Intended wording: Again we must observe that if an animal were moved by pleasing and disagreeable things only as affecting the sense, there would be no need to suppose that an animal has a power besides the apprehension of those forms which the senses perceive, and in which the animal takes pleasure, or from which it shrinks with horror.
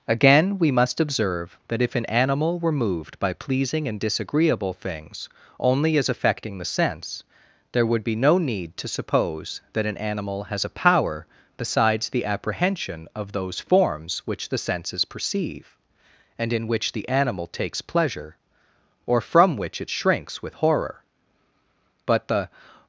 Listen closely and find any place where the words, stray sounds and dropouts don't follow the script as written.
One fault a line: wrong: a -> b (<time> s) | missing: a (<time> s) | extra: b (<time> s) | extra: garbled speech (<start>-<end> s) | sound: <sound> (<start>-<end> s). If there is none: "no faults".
extra: But the (22.1 s)